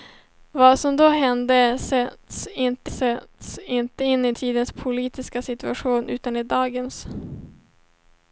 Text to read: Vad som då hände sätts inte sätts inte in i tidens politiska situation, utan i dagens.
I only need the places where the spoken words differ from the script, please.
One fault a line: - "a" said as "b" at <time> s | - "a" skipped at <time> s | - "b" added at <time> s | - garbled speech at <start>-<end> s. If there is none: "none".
none